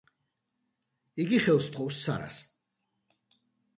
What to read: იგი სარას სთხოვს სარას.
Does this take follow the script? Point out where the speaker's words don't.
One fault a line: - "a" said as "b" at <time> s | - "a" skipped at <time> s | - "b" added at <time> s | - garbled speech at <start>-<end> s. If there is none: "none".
- "სარას" said as "ხელს" at 1.4 s